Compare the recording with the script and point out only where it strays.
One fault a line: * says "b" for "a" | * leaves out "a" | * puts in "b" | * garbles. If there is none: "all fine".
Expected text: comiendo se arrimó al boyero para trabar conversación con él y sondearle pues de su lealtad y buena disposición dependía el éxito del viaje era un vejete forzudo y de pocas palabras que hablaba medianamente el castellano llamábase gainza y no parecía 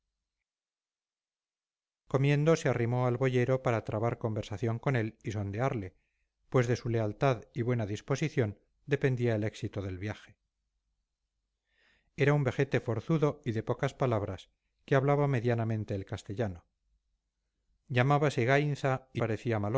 * leaves out "no"